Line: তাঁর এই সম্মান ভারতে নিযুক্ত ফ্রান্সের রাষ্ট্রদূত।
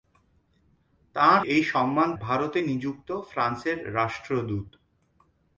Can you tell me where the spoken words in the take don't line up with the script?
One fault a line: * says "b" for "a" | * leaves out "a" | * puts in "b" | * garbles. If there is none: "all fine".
all fine